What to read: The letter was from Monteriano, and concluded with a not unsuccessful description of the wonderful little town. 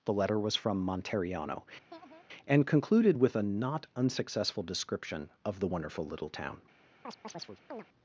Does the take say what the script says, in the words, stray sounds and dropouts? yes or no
no